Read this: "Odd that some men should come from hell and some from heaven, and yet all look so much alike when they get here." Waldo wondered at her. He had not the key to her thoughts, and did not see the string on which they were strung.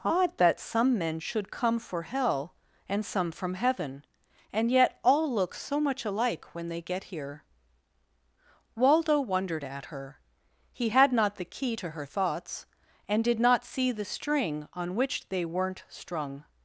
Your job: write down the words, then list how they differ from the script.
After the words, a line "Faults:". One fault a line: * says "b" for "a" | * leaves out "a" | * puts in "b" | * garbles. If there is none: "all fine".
"Odd that some men should come for hell and some from heaven, and yet all look so much alike when they get here." Waldo wondered at her. He had not the key to her thoughts, and did not see the string on which they weren't strung.
Faults:
* says "for" for "from"
* says "weren't" for "were"